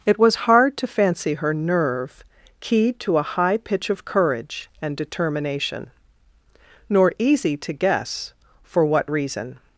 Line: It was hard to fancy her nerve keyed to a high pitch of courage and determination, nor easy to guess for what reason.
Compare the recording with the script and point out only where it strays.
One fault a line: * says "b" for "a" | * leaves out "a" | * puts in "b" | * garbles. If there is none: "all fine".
all fine